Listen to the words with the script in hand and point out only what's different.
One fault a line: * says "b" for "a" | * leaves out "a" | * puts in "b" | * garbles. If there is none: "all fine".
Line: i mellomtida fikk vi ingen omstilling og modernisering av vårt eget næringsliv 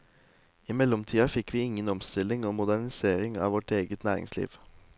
all fine